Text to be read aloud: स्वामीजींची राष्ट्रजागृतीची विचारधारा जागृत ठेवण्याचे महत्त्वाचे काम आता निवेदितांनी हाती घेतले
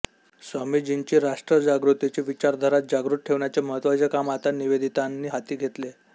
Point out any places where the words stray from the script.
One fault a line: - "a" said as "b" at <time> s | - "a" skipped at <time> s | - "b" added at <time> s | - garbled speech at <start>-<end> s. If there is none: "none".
none